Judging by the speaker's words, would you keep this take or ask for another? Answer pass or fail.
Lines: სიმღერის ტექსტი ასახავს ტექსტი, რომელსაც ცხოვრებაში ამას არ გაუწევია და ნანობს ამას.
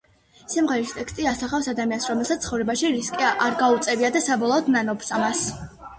fail